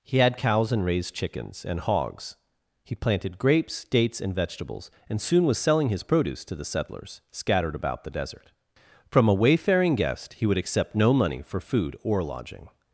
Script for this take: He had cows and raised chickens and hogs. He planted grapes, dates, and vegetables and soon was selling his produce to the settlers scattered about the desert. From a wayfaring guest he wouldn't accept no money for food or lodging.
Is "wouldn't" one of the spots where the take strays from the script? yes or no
yes